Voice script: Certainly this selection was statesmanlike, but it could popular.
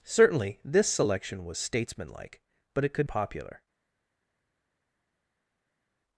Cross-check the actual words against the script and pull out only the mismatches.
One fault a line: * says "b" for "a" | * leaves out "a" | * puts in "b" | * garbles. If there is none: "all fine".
all fine